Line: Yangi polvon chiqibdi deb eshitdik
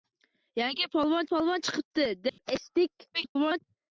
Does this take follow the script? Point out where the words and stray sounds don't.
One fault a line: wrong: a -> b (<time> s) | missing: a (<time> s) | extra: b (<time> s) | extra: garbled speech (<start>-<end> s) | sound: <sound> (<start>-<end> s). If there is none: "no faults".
extra: polvon (1.3 s)
sound: dropout (2.3-2.4 s)
extra: garbled speech (3.1-3.6 s)